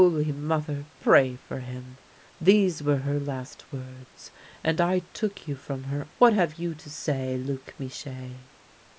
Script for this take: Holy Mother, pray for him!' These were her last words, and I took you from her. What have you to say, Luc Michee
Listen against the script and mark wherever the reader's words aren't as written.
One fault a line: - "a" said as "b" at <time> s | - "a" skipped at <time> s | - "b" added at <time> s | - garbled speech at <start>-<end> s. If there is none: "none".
none